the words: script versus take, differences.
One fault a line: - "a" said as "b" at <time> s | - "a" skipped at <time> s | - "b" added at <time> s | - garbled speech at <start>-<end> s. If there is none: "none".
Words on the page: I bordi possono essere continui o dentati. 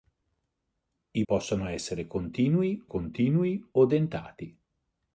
- "bordi" skipped at 1.2 s
- "continui" added at 2.8 s